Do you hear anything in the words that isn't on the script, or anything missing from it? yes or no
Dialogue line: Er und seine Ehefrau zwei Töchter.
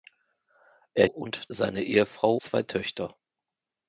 no